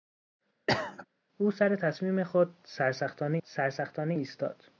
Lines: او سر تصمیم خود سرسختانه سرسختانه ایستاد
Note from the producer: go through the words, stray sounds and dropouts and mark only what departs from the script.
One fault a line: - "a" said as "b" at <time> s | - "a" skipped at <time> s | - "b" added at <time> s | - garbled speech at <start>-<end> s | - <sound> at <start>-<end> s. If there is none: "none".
- cough at 0.7-1.1 s